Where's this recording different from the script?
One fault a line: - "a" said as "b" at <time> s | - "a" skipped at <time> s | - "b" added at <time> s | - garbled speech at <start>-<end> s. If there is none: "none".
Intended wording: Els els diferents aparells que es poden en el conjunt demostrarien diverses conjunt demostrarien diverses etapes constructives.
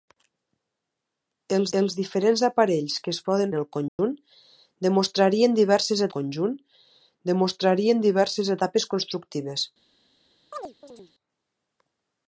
none